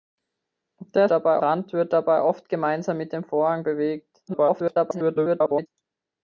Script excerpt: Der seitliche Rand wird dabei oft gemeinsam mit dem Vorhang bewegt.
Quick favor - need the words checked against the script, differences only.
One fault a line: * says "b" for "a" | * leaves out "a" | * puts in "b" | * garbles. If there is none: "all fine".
* says "dabei" for "seitliche"
* garbles